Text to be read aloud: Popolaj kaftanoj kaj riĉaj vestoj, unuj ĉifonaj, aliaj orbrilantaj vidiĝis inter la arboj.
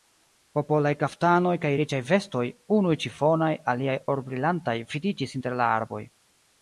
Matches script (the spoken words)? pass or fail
pass